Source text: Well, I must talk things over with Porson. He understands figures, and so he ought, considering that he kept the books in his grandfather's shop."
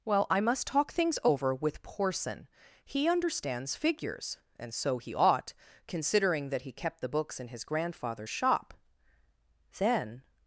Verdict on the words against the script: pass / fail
fail